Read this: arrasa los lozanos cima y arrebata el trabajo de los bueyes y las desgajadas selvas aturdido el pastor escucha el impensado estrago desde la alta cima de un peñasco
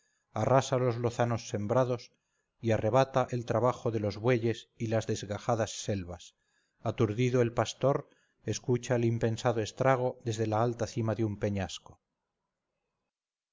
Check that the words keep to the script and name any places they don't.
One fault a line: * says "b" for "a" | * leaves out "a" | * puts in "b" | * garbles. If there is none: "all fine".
* says "sembrados" for "cima"